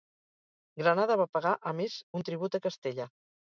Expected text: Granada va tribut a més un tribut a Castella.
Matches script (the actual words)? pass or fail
fail